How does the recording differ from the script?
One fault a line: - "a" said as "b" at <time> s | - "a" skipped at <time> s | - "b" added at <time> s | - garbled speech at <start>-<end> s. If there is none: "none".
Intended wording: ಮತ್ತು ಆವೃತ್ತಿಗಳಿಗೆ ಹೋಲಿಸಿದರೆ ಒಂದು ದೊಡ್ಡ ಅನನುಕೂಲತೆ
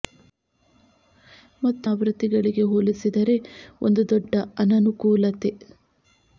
none